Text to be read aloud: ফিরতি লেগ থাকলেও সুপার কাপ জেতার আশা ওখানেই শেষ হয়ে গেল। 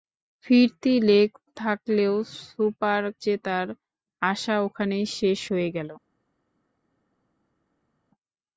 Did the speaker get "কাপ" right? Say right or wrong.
wrong